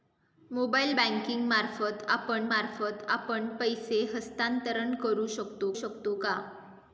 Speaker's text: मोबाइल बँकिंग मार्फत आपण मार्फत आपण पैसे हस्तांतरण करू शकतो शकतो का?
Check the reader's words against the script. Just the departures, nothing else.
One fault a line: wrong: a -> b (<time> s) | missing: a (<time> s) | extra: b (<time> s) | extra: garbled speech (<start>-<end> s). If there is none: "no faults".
no faults